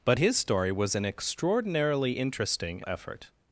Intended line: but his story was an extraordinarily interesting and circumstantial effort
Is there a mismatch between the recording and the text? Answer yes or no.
yes